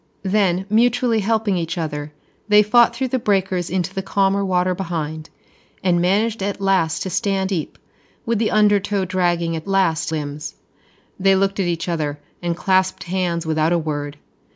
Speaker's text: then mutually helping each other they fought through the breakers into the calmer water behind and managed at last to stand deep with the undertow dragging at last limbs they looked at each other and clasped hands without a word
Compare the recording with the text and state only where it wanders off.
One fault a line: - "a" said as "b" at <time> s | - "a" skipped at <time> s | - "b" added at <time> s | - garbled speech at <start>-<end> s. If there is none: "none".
none